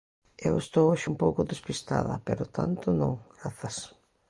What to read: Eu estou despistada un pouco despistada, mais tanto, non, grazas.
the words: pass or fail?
fail